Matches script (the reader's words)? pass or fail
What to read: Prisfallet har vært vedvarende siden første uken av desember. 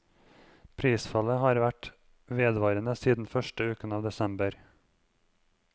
pass